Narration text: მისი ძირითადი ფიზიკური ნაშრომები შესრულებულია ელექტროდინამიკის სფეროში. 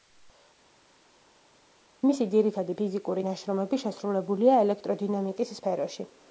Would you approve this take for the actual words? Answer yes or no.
yes